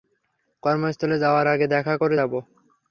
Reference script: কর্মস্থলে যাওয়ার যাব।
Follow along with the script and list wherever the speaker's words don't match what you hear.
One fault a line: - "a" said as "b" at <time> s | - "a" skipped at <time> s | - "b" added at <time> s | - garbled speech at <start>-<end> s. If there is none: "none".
- "আগে দেখা করে" added at 1.5 s